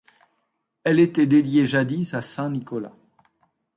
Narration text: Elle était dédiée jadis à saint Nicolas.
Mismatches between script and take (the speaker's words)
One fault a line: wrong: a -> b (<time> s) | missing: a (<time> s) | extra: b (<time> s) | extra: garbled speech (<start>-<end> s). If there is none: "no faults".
no faults